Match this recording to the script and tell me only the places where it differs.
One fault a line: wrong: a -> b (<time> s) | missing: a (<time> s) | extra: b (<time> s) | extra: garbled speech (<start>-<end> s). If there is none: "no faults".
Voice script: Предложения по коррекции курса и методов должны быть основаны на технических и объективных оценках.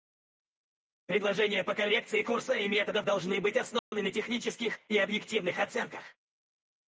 no faults